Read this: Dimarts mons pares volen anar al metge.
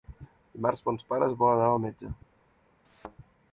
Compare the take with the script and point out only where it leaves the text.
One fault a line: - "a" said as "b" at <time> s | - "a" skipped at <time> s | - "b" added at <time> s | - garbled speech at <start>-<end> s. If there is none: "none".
none